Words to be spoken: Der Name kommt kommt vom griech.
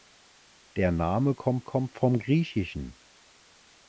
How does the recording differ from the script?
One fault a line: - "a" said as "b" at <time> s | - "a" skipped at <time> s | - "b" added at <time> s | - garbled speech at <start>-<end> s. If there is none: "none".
none